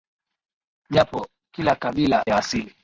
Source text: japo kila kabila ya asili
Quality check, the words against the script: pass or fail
pass